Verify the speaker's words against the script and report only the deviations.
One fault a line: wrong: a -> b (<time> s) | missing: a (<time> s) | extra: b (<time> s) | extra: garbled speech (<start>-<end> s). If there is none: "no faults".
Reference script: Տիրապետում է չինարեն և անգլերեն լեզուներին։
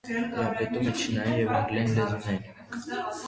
no faults